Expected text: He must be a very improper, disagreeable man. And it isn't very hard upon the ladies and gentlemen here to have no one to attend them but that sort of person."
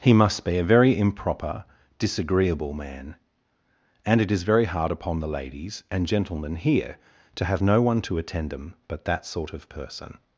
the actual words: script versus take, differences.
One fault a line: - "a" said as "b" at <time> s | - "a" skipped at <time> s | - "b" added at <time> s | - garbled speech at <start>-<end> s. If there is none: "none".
- "isn't" said as "is" at 4.3 s